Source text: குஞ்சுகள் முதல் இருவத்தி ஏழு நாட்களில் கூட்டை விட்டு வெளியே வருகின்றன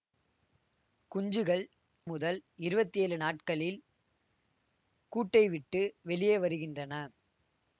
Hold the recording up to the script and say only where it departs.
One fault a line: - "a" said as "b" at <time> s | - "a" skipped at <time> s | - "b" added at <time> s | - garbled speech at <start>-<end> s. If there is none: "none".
none